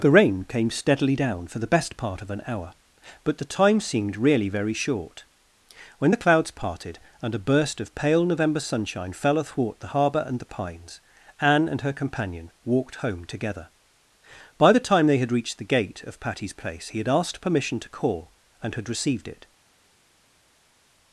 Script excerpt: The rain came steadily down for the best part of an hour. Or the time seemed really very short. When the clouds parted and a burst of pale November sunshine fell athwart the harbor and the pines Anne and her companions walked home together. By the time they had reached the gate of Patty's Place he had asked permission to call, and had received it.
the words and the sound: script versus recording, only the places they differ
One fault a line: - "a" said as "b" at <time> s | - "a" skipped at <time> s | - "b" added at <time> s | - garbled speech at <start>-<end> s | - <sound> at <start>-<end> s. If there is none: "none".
- "Or" said as "But" at 3.2 s
- "companions" said as "companion" at 11.9 s